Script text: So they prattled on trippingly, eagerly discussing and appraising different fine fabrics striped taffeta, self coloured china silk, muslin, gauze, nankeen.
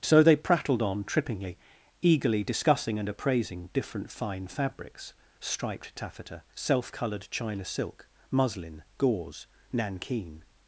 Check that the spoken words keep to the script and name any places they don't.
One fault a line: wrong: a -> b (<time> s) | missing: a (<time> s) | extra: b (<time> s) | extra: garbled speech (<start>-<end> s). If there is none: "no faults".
no faults